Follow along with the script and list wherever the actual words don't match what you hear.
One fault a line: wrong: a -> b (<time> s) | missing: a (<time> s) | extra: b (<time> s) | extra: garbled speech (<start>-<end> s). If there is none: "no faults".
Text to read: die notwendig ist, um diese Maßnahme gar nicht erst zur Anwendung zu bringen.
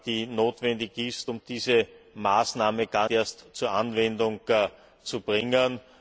missing: nicht (3.1 s)